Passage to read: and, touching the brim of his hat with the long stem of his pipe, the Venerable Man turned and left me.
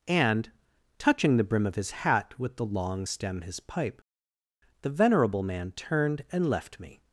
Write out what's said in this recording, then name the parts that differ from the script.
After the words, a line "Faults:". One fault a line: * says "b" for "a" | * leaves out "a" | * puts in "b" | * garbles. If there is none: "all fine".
and, touching the brim of his hat with the long stem his pipe, the Venerable Man turned and left me.
Faults:
* leaves out "of"